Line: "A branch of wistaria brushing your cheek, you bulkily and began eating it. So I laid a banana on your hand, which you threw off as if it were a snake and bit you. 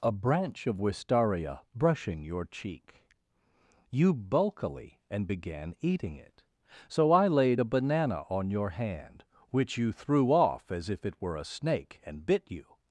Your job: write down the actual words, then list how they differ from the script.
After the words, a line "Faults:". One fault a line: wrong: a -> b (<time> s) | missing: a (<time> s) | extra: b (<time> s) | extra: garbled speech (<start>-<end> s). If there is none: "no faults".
"A branch of wistaria brushing your cheek, you bulkily and began eating it. So I laid a banana on your hand, which you threw off as if it were a snake and bit you.
Faults:
no faults